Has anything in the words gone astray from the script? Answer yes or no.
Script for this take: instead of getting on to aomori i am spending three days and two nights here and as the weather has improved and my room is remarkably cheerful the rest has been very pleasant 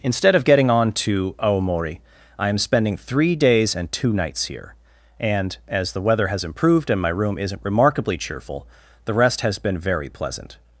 yes